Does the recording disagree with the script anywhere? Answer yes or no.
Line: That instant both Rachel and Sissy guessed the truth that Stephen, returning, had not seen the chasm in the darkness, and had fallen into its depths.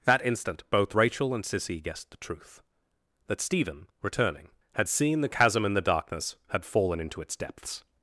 yes